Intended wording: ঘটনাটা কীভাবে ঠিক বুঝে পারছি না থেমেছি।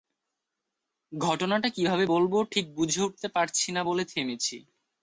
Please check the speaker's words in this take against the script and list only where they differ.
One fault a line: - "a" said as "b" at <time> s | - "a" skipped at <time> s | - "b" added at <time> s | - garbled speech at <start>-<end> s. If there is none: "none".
- "বলব" added at 2.0 s
- "উঠতে" added at 3.0 s
- "বলে" added at 3.8 s